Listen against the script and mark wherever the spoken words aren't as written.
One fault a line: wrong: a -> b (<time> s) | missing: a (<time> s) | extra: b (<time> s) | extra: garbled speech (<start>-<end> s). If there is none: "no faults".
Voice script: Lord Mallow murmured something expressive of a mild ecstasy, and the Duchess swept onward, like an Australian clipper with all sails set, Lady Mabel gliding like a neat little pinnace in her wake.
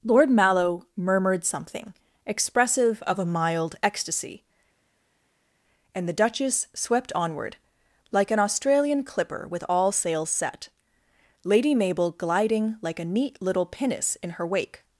no faults